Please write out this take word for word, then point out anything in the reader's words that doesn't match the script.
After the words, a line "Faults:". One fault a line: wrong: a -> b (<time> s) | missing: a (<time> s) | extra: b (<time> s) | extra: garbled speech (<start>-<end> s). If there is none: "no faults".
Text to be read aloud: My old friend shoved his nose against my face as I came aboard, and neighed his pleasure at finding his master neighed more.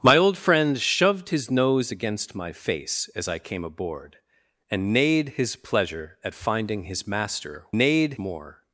My old friend shoved his nose against my face as I came aboard, and neighed his pleasure at finding his master neighed more.
Faults:
no faults